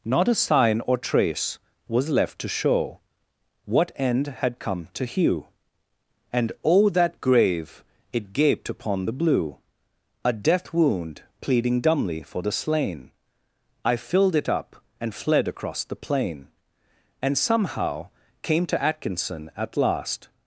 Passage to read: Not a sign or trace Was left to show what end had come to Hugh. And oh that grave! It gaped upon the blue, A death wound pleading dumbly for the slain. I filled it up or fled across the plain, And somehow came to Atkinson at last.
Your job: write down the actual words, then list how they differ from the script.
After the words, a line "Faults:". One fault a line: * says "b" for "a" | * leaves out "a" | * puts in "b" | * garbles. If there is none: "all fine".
Not a sign or trace Was left to show what end had come to Hugh. And oh that grave! It gaped upon the blue, A death wound pleading dumbly for the slain. I filled it up and fled across the plain, And somehow came to Atkinson at last.
Faults:
* says "and" for "or"